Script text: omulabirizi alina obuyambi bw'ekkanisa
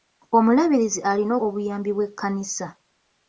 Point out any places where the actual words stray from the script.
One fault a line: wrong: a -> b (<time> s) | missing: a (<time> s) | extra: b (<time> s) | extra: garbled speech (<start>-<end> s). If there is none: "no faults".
no faults